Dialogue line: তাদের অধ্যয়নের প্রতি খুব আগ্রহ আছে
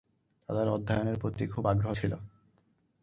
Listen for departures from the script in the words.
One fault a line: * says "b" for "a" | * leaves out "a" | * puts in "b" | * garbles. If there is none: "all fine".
* says "ছিল" for "আছে"